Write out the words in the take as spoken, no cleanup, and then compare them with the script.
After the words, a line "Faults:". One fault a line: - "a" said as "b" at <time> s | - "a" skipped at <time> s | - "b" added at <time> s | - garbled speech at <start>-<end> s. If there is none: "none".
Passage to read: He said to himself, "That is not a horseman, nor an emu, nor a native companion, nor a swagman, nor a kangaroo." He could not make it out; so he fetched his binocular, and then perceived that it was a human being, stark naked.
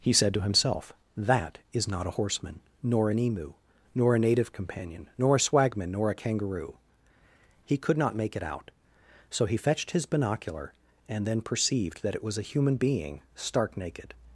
He said to himself, "That is not a horseman, nor an emu, nor a native companion, nor a swagman, nor a kangaroo." He could not make it out; so he fetched his binocular, and then perceived that it was a human being, stark naked.
Faults:
none